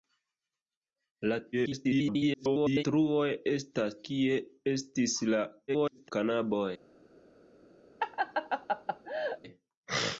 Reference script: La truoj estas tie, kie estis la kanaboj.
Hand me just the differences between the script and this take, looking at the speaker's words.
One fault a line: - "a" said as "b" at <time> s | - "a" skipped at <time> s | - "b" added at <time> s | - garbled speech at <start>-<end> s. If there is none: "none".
- garbled speech at 1.5-2.8 s
- "tie" skipped at 4.0 s
- garbled speech at 5.7-6.1 s